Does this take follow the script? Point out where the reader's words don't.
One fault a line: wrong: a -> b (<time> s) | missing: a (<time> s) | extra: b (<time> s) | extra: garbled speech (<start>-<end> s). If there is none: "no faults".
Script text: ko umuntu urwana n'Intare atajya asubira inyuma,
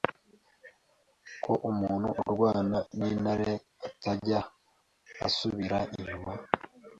no faults